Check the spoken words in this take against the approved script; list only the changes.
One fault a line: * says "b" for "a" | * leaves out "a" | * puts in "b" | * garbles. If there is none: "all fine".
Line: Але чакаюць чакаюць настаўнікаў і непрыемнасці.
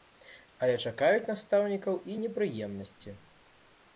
* leaves out "чакаюць"